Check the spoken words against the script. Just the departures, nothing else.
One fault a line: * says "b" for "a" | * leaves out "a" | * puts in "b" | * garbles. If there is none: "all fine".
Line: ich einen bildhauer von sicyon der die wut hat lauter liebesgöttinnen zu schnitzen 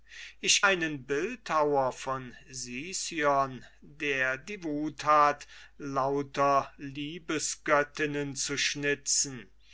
all fine